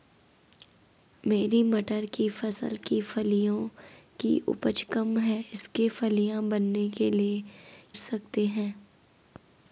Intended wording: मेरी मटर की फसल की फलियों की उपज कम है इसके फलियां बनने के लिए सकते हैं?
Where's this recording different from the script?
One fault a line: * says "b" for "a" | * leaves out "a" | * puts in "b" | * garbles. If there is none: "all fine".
all fine